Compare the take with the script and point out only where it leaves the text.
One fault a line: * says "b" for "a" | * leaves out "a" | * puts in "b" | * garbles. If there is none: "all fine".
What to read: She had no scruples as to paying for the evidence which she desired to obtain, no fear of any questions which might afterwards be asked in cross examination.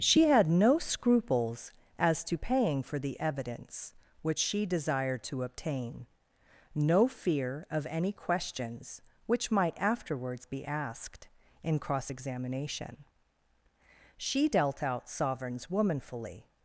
* puts in "She dealt out sovereigns womanfully"